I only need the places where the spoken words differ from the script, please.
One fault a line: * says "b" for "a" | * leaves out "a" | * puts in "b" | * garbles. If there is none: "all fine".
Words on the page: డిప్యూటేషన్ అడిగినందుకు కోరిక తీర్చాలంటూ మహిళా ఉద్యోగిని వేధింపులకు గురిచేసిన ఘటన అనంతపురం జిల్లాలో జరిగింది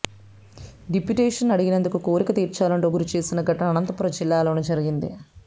* leaves out "మహిళా ఉద్యోగిని వేధింపులకు"